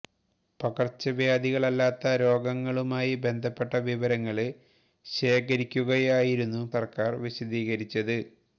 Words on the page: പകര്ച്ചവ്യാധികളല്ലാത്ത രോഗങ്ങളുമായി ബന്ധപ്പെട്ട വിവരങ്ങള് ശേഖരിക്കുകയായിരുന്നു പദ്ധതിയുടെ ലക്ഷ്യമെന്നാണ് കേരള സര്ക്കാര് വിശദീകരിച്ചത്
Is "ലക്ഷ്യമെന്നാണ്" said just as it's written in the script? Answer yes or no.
no